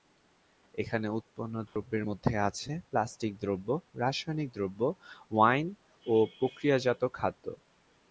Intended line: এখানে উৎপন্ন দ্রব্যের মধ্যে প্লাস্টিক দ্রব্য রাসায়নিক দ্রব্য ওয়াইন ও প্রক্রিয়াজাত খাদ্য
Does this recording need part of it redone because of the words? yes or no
yes